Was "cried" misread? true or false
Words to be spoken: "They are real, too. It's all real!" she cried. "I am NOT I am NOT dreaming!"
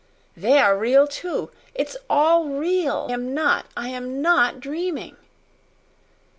true